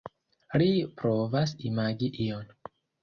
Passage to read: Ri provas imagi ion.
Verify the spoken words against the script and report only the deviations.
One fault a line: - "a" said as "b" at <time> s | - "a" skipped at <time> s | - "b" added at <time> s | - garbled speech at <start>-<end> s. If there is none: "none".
none